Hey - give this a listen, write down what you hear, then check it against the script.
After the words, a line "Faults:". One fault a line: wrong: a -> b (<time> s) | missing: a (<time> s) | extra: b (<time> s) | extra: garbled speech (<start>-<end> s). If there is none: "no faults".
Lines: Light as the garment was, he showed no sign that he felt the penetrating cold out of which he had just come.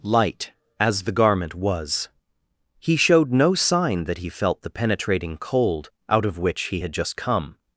Light as the garment was, he showed no sign that he felt the penetrating cold out of which he had just come.
Faults:
no faults